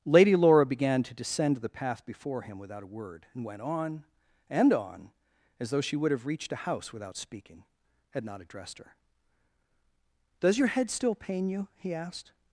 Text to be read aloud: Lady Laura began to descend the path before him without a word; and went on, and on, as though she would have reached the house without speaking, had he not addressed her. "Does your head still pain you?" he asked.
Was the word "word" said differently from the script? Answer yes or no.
no